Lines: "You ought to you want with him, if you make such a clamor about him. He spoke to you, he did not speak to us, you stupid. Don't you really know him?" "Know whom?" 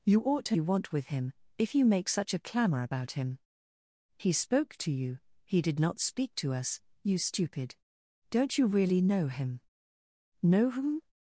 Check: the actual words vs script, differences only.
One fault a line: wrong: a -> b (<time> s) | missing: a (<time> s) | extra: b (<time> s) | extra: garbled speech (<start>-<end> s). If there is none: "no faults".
no faults